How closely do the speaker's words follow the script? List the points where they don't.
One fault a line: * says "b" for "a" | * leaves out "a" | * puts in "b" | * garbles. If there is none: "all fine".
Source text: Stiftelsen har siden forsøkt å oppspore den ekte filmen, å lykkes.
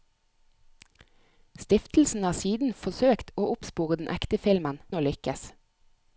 all fine